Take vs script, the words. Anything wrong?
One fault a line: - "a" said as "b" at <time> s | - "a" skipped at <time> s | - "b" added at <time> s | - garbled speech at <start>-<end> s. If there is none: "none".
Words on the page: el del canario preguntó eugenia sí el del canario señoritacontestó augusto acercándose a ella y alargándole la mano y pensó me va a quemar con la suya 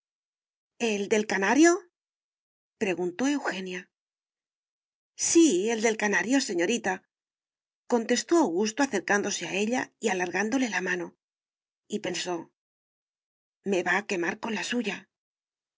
none